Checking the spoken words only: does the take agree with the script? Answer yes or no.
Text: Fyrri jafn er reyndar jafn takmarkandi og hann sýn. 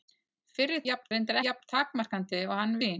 yes